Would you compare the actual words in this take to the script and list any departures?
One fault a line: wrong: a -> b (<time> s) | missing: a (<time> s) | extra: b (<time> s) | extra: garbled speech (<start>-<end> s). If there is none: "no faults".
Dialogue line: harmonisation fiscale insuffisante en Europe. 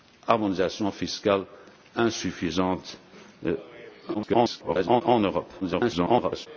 extra: garbled speech (4.1-5.0 s)
extra: garbled speech (5.6-6.5 s)